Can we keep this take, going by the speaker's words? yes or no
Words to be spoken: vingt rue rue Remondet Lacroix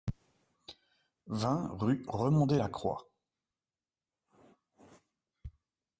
no